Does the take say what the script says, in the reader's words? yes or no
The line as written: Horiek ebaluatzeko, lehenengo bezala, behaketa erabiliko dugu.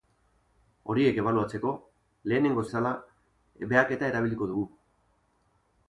yes